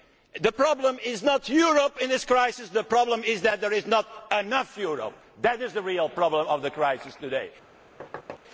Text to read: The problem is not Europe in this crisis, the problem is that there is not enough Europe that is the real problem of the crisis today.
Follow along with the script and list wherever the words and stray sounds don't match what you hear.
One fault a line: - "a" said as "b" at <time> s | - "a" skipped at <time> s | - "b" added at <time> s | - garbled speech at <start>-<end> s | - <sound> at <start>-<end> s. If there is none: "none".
- thud at 8.0-8.4 s